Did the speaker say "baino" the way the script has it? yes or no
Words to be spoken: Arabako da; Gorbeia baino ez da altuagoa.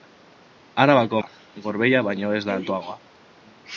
yes